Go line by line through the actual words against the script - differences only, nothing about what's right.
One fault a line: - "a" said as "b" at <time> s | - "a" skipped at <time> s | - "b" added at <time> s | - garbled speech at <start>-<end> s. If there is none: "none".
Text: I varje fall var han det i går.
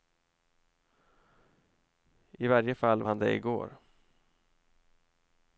- "var" skipped at 3.0 s